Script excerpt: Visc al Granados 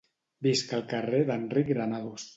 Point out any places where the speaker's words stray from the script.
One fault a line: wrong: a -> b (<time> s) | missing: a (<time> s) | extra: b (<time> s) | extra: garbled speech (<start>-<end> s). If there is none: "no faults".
extra: carrer d'Enric (0.9 s)